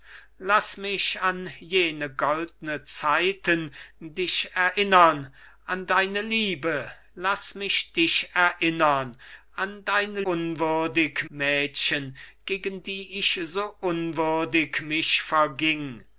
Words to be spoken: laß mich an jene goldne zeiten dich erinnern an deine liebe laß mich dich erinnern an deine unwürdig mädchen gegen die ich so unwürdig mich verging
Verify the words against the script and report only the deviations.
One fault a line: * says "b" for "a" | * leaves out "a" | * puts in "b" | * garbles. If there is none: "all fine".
all fine